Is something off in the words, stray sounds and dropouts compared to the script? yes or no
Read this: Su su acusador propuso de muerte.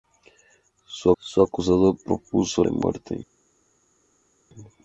no